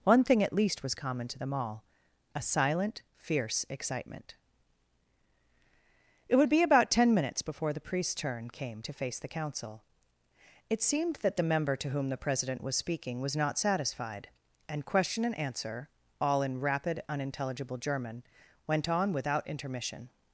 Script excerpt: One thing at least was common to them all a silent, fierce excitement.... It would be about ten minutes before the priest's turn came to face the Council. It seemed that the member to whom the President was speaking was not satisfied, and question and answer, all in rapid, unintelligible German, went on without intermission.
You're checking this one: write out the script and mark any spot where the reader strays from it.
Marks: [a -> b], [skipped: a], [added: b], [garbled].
One thing at least was common to them all a silent, fierce excitement.... It would be about ten minutes before the priest's turn came to face the Council. It seemed that the member to whom the President was speaking was not satisfied, and question and answer, all in rapid, unintelligible German, went on without intermission.